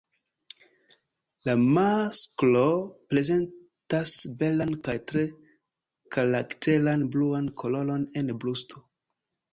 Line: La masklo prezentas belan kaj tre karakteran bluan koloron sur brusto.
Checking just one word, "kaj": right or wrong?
right